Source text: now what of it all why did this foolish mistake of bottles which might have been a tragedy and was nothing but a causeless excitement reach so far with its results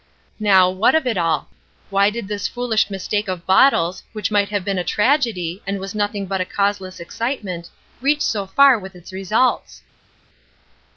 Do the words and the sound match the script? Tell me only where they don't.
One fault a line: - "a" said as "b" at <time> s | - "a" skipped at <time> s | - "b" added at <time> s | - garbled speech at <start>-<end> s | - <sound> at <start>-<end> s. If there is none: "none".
none